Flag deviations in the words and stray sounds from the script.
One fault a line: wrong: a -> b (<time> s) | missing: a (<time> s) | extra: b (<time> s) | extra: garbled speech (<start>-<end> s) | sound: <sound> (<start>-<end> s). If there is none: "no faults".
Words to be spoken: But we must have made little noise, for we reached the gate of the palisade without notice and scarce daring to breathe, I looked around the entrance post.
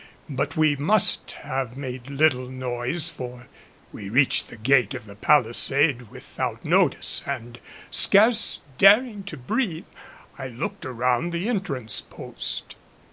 no faults